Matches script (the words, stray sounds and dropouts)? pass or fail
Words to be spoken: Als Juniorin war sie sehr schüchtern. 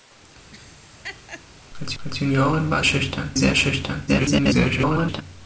fail